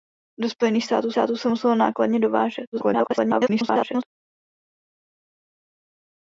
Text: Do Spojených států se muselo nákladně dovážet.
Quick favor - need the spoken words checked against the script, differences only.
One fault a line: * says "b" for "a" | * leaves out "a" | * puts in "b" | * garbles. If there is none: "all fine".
* puts in "států"
* garbles